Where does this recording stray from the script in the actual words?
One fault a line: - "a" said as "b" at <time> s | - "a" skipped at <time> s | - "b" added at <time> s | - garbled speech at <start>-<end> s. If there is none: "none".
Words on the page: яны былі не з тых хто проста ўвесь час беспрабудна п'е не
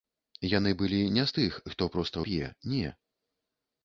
- "ўвесь час беспрабудна" skipped at 2.3 s